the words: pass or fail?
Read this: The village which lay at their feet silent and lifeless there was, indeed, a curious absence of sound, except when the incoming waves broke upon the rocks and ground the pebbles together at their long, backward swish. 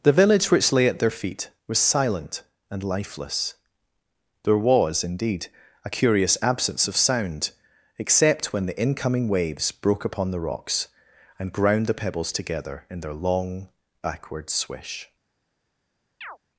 fail